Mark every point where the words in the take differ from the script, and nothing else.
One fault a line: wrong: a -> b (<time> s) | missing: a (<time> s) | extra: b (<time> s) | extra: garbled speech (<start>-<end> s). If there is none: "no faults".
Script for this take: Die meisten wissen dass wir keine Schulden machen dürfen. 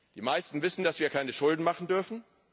no faults